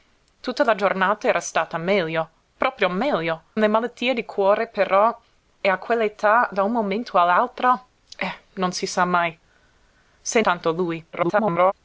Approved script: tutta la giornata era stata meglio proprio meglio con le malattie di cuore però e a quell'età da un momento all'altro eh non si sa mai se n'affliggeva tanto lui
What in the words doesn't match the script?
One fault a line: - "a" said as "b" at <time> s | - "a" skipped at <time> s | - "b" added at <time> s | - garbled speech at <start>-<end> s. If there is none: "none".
- "con" skipped at 3.4 s
- "n'affliggeva" skipped at 10.4 s
- garbled speech at 11.1-11.7 s